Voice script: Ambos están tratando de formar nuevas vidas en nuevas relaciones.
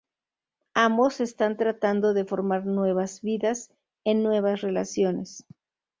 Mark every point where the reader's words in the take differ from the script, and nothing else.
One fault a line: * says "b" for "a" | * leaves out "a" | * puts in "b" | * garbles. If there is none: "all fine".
all fine